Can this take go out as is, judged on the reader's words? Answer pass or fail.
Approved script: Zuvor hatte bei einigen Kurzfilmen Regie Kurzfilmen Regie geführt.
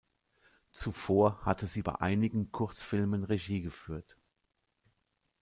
fail